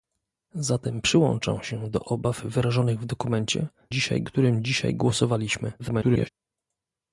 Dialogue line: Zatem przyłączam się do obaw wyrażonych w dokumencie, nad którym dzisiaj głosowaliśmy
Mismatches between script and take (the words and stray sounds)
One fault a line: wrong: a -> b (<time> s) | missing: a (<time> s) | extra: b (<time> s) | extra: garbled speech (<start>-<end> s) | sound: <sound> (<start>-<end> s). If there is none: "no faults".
wrong: nad -> dzisiaj (3.9 s)
extra: garbled speech (5.8-6.3 s)